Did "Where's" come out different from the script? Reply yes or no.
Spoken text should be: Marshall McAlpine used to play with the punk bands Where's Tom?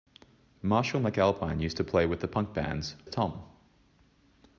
yes